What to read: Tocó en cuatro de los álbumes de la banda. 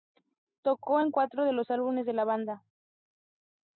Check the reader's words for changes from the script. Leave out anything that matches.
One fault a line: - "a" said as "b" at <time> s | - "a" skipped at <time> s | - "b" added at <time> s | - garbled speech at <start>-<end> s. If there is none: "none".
none